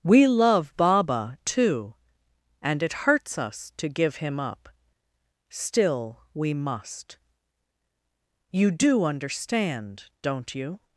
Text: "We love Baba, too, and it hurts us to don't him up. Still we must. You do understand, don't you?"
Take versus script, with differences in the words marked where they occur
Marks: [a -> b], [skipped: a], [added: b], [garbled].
"We love Baba, too, and it hurts us to [don't -> give] him up. Still we must. You do understand, don't you?"